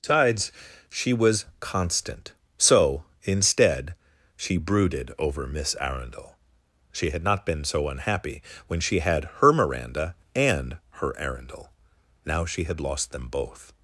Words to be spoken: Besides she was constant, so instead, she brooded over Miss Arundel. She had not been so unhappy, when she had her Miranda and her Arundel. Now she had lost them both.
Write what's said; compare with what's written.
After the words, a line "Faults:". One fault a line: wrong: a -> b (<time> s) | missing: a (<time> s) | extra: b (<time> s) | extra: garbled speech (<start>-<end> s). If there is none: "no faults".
Besides she was constant, so instead, she brooded over Miss Arundel. She had not been so unhappy, when she had her Miranda and her Arundel. Now she had lost them both.
Faults:
no faults